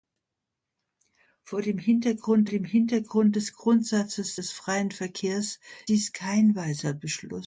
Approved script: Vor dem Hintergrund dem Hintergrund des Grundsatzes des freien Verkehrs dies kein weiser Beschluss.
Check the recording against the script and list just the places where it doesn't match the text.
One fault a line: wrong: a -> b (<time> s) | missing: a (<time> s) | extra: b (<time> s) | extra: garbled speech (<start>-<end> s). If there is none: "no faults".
no faults